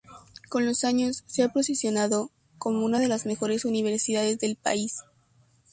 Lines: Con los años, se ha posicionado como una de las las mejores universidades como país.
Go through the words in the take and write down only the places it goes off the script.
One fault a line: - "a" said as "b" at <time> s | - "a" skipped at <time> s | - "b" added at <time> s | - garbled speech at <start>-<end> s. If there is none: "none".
- "las" skipped at 3.3 s
- "como" said as "del" at 4.4 s